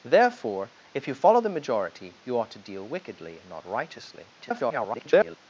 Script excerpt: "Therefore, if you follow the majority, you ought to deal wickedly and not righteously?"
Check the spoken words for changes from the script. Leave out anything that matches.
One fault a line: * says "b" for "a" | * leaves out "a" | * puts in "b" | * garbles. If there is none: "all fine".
* garbles